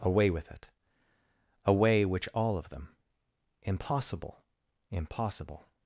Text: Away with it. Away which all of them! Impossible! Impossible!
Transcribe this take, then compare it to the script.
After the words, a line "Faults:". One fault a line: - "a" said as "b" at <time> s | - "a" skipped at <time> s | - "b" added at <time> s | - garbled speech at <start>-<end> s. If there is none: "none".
Away with it. Away which all of them! Impossible! Impossible!
Faults:
none